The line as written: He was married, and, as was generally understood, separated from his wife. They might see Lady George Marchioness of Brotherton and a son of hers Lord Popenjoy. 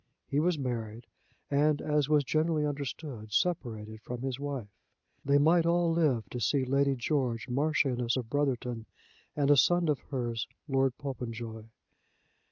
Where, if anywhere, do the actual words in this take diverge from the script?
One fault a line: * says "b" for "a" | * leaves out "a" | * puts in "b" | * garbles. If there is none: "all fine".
* puts in "all live to"